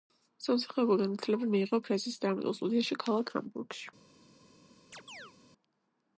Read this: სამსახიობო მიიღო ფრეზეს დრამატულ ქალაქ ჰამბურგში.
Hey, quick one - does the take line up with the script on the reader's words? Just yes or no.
no